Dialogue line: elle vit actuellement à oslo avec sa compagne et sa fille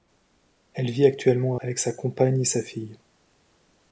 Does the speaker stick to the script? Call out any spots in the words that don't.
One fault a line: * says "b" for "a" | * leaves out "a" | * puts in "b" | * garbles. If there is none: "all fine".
* leaves out "oslo"